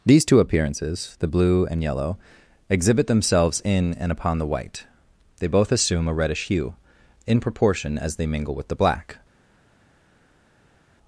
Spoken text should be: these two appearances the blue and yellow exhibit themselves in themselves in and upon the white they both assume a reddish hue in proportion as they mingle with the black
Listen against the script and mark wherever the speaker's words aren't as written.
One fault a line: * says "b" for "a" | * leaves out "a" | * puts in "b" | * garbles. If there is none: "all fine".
* leaves out "themselves in"